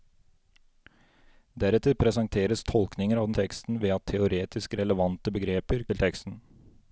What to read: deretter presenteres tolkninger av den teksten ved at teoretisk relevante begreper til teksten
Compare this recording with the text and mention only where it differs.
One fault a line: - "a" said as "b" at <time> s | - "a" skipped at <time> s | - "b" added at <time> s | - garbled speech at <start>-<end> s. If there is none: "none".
none